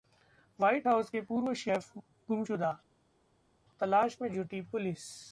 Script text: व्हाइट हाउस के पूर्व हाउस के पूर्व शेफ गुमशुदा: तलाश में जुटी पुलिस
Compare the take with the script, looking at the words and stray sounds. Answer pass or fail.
fail